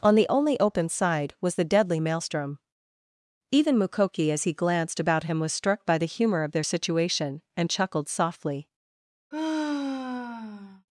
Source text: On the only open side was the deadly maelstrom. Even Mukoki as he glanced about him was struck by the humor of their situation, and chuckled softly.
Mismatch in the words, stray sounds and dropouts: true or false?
true